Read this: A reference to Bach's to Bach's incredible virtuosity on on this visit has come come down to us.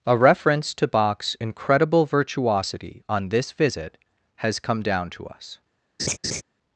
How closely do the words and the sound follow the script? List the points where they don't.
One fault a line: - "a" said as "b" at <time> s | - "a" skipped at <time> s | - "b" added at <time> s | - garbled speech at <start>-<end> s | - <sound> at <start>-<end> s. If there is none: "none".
- "to Bach's" skipped at 1.4 s
- "on" skipped at 3.3 s
- "come" skipped at 4.8 s
- laugh at 6.0-6.4 s